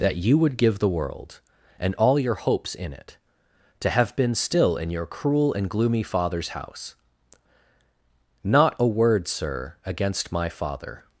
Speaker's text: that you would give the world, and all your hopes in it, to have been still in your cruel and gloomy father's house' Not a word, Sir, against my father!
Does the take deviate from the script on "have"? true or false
false